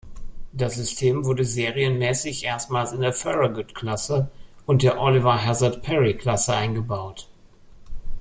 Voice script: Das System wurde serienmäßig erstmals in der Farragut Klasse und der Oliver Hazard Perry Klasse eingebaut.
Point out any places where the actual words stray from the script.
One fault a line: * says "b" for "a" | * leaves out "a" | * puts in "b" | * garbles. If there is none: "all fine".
all fine